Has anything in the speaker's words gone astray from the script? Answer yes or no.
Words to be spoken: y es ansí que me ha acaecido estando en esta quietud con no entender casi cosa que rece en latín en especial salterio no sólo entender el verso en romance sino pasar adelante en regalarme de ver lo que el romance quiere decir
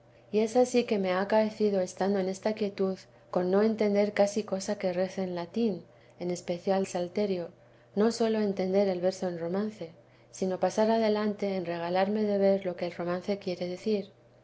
no